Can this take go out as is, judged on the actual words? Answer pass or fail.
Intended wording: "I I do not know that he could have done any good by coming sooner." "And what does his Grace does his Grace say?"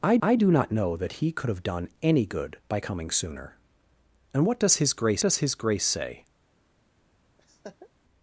pass